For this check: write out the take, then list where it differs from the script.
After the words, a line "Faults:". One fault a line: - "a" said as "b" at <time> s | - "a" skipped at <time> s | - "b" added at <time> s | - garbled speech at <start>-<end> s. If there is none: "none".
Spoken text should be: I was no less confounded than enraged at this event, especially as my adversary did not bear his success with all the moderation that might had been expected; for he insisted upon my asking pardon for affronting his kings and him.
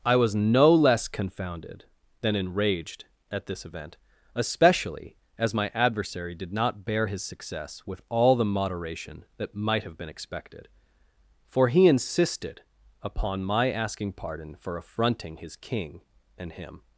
I was no less confounded than enraged at this event, especially as my adversary did not bear his success with all the moderation that might have been expected; for he insisted upon my asking pardon for affronting his king and him.
Faults:
- "had" said as "have" at 9.8 s
- "kings" said as "king" at 15.6 s